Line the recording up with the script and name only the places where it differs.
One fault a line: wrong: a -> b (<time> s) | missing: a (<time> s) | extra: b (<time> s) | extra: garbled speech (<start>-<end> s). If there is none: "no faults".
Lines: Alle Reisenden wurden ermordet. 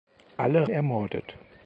missing: Reisenden wurden (0.7 s)